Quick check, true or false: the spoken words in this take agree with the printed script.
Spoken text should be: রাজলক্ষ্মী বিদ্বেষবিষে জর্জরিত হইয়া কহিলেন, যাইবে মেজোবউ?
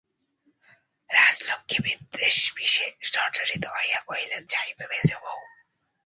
true